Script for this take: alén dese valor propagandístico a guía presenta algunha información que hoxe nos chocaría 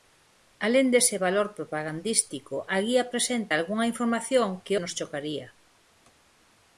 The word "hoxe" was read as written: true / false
false